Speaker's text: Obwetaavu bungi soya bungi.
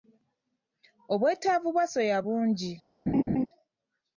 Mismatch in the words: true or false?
true